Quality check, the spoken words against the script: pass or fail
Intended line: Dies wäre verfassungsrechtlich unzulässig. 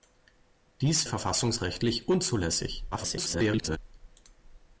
fail